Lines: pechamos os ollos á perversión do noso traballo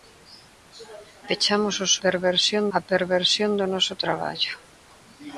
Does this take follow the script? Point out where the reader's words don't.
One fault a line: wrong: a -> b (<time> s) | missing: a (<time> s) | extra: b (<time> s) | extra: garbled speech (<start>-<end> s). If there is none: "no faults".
wrong: ollos -> perversión (2.0 s)